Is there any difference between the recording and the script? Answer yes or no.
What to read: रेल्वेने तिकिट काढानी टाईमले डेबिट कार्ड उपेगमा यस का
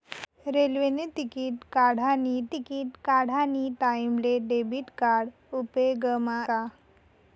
yes